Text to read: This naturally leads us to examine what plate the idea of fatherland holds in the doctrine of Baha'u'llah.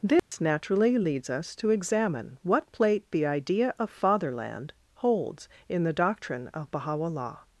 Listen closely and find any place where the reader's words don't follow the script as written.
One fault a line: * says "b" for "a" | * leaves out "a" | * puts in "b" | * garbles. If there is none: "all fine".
all fine